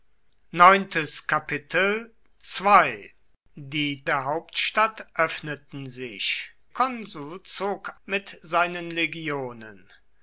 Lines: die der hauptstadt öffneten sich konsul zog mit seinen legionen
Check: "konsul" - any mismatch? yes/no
no